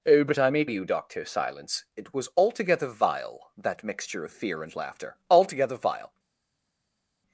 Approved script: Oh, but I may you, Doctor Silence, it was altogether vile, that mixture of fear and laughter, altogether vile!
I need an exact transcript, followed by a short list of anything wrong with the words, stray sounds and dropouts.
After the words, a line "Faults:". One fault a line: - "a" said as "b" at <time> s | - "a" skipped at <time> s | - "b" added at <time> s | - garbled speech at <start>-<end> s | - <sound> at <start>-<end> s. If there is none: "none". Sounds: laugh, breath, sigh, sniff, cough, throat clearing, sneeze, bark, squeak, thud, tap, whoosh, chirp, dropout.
Oh, but I may you, Doctor Silence, it was altogether vile, that mixture of fear and laughter, altogether vile!
Faults:
none